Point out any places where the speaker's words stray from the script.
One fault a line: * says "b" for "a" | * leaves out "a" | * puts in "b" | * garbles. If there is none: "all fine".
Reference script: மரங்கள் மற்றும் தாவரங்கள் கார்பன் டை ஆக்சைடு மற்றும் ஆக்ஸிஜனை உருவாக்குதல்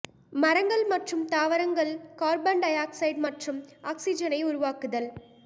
all fine